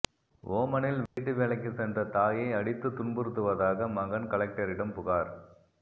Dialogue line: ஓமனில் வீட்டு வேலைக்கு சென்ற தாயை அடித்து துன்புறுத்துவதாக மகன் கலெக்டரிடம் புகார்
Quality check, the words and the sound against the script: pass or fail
fail